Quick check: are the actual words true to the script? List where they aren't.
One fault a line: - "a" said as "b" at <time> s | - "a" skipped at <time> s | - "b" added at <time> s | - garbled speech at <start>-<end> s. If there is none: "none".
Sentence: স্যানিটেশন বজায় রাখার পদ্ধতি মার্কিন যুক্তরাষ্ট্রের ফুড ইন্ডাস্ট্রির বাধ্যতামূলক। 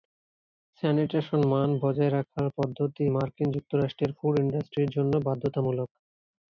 - "মান" added at 1.5 s
- "জন্য" added at 4.9 s